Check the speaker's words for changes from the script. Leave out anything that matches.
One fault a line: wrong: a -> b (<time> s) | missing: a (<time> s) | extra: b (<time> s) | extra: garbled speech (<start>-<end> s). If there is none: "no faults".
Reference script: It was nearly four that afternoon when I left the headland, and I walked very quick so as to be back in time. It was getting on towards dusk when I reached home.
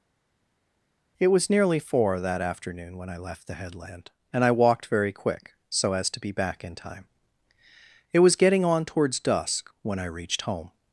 no faults